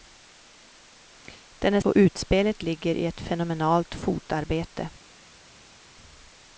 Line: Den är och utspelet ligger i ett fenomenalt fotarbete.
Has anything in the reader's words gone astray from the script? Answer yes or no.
no